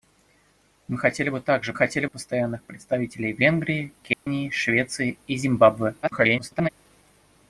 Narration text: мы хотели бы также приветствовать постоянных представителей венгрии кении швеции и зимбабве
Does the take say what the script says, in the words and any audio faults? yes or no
no